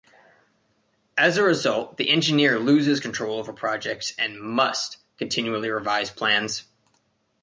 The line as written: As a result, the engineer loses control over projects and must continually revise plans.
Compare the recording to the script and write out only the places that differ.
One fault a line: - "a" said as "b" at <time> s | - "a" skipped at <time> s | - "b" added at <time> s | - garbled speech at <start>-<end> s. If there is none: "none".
none